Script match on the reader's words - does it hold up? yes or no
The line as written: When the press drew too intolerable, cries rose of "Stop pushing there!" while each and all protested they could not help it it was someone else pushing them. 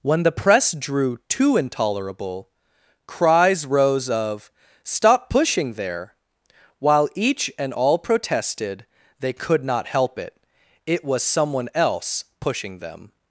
yes